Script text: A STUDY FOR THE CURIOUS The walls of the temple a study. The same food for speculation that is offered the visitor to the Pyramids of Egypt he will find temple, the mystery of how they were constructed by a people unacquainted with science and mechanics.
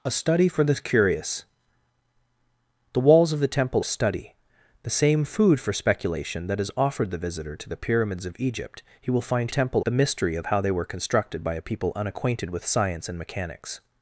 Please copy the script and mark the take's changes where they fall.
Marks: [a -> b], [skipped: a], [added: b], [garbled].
A STUDY FOR THE CURIOUS The walls of the temple a study. The same food for speculation that is offered the visitor to the Pyramids of Egypt he will find temple, the mystery of how they were constructed by a people unacquainted with science and mechanics.